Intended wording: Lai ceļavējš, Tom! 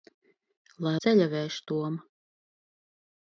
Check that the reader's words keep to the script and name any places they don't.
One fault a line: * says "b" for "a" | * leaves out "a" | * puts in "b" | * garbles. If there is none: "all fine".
all fine